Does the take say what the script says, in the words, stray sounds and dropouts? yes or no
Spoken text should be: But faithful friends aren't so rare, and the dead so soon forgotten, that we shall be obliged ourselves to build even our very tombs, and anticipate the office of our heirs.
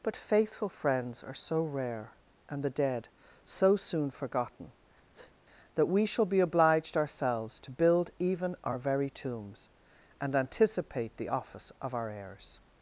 no